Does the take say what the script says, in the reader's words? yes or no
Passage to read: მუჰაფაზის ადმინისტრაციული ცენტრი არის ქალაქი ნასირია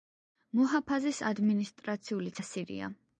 no